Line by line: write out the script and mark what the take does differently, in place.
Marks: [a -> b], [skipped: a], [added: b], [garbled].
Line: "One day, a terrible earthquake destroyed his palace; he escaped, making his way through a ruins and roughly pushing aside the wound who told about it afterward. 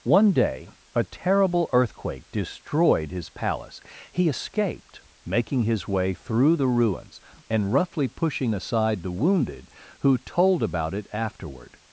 "One day, a terrible earthquake destroyed his palace; he escaped, making his way through [a -> the] ruins and roughly pushing aside the [wound -> wounded] who told about it afterward.